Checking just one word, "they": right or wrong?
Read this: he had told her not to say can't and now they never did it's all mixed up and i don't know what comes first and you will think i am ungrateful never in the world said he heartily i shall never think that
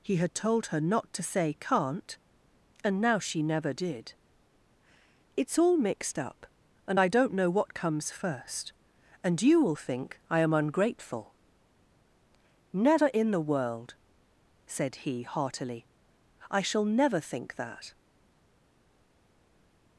wrong